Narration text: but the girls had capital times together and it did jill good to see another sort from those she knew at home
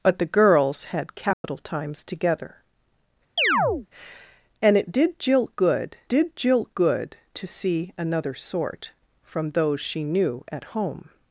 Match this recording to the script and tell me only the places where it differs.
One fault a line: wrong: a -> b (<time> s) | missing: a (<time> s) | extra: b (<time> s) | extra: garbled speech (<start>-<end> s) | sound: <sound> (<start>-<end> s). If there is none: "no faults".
sound: dropout (1.3-1.4 s)
sound: chirp (3.4-3.9 s)
extra: did jill good (6.1 s)